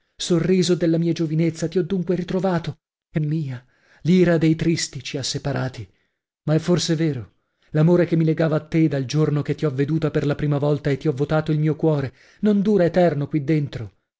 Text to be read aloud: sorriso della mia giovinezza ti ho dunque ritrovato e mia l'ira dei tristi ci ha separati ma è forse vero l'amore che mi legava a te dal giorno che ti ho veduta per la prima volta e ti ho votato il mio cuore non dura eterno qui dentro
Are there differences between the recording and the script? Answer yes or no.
no